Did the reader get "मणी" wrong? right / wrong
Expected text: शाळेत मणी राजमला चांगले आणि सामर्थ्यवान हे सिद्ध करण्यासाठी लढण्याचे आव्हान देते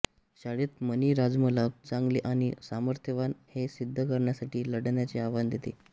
right